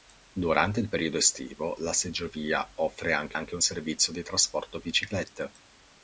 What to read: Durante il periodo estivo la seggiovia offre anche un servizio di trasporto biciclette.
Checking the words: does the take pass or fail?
fail